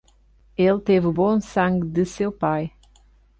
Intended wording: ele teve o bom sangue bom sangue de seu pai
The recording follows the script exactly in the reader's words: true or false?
false